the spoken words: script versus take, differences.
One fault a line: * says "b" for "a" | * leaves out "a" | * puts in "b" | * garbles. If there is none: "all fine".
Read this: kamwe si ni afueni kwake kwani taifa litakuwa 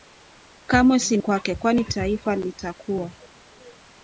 * leaves out "ni afueni"